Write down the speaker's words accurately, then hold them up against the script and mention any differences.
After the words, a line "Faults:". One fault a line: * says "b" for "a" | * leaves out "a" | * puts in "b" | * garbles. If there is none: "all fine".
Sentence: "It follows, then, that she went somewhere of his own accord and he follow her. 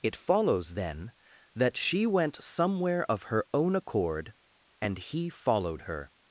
"It follows, then, that she went somewhere of her own accord and he followed her.
Faults:
* says "her" for "his"
* says "followed" for "follow"